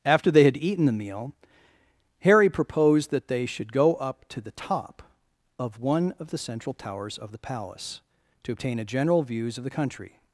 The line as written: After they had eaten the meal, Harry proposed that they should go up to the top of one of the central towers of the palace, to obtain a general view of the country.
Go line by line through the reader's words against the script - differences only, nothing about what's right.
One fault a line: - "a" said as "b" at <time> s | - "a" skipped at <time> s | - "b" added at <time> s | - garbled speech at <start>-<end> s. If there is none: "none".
- "view" said as "views" at 9.2 s